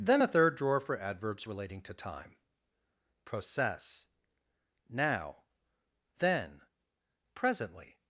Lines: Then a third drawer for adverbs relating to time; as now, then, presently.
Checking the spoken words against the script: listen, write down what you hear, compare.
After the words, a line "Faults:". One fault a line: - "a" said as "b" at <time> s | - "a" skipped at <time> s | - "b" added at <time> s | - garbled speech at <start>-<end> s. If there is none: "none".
Then a third drawer for adverbs relating to time; process now, then, presently.
Faults:
- "as" said as "process" at 3.2 s